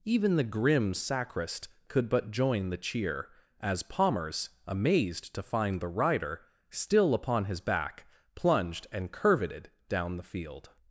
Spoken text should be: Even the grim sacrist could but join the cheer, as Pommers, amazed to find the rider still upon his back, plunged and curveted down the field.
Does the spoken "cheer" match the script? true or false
true